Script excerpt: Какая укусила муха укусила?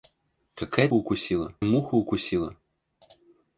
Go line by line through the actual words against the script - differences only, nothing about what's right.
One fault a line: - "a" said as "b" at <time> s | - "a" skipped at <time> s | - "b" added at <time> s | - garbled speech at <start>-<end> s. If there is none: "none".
none